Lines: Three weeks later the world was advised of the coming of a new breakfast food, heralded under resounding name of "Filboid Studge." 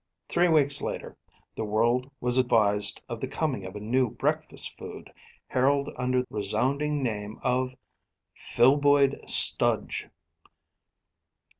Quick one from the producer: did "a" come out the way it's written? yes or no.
yes